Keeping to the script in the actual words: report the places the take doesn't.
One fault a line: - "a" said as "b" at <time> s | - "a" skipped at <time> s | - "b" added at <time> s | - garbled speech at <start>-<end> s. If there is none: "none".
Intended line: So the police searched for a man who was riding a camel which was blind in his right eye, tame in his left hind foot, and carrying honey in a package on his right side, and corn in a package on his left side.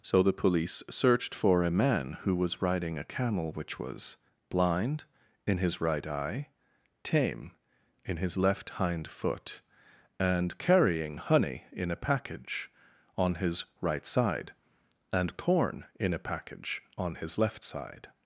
none